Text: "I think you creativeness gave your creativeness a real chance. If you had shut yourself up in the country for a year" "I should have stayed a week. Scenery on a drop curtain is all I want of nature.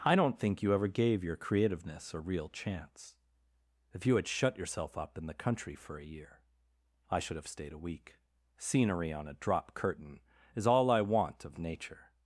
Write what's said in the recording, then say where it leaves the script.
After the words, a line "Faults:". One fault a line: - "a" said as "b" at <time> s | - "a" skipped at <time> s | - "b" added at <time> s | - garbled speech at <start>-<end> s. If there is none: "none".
"I don't think you ever gave your creativeness a real chance. If you had shut yourself up in the country for a year" "I should have stayed a week. Scenery on a drop curtain is all I want of nature.
Faults:
- "don't" added at 0.1 s
- "creativeness" said as "ever" at 0.7 s